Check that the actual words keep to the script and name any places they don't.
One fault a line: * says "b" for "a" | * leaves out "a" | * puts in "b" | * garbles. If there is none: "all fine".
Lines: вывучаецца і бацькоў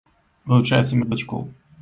all fine